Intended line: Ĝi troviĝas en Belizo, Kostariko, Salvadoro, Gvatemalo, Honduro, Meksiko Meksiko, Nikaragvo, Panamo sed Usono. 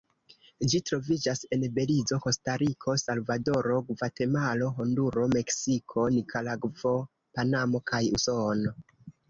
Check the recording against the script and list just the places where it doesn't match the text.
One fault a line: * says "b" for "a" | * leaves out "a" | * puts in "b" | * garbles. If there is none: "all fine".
* leaves out "Meksiko"
* says "kaj" for "sed"